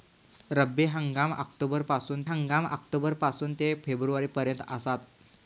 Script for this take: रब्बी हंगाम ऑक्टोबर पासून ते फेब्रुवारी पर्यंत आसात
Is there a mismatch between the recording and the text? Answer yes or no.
yes